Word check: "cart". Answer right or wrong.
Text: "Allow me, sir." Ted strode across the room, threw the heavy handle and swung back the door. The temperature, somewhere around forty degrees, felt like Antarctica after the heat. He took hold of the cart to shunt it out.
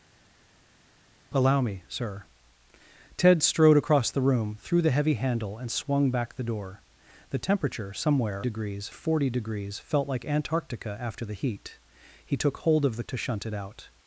wrong